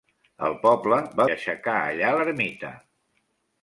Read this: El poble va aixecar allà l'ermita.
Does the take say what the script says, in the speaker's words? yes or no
yes